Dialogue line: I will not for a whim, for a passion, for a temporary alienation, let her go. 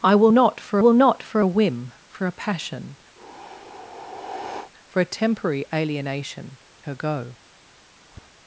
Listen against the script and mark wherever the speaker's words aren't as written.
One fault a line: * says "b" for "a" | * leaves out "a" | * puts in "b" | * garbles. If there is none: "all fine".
* puts in "will not for"
* leaves out "let"